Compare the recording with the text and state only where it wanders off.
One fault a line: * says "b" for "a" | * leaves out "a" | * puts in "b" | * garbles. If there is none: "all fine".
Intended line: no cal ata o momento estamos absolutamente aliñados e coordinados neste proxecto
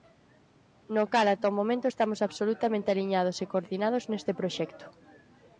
all fine